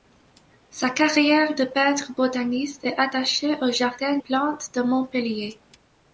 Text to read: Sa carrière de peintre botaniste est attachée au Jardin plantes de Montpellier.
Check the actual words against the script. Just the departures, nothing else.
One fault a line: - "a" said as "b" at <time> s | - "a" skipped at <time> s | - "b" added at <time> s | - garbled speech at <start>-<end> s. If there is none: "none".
none